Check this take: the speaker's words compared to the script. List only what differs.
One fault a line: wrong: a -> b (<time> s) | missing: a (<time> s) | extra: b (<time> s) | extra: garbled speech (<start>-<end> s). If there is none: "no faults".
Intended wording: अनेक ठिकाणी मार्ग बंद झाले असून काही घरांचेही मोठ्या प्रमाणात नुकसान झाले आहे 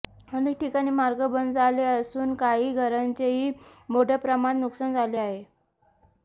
no faults